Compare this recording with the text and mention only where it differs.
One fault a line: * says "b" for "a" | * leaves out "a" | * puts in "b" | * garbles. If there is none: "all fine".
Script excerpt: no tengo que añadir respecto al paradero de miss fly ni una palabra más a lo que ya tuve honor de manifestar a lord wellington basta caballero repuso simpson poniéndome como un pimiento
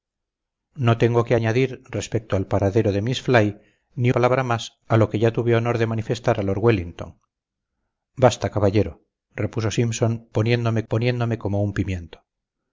* leaves out "una"
* puts in "poniéndome"